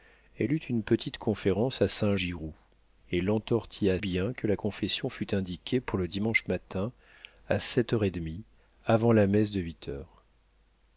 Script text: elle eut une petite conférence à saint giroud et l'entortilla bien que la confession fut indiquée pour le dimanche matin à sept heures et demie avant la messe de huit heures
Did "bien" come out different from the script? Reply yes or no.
no